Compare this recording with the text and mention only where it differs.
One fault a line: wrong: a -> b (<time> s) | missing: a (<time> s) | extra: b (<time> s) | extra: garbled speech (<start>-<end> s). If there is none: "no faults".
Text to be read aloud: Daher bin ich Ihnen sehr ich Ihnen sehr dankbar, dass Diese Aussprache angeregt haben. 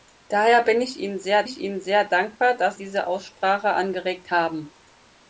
no faults